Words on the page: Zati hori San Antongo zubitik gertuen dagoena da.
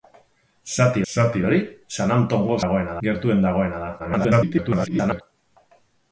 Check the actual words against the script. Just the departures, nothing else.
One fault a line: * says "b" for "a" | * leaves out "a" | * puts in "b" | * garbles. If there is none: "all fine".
* puts in "zati"
* says "dagoena" for "zubitik"
* garbles